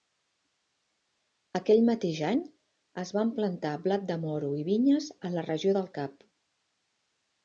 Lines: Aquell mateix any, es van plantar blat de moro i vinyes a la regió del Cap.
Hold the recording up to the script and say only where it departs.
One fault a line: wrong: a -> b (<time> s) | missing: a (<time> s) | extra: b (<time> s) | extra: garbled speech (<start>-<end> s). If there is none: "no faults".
no faults